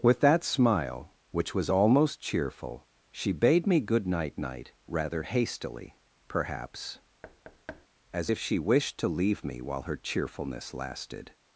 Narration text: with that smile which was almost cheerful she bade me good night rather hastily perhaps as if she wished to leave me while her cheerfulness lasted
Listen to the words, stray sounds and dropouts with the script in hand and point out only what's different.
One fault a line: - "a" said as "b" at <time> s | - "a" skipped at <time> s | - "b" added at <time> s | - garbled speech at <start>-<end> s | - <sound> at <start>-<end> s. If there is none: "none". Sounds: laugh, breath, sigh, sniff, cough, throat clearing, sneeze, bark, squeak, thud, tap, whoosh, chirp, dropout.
- "night" added at 4.3 s
- thud at 7.2-7.9 s